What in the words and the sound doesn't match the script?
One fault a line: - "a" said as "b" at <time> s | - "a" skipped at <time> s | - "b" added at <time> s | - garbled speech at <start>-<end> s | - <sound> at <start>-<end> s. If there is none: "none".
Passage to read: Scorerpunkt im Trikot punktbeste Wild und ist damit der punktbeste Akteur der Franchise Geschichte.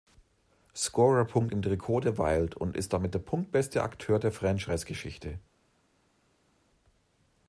- "punktbeste" said as "der" at 2.0 s